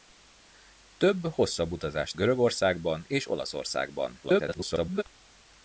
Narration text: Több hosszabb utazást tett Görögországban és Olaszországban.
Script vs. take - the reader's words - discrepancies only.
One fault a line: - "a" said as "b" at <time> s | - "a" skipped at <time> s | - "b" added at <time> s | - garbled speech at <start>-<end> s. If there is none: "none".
- "tett" skipped at 2.1 s
- garbled speech at 4.2-5.0 s